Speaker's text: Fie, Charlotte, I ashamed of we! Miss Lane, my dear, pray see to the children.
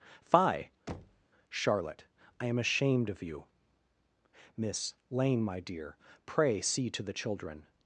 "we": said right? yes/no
no